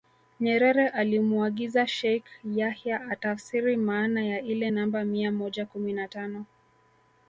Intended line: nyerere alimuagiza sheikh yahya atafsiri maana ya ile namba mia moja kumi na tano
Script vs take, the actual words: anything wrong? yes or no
no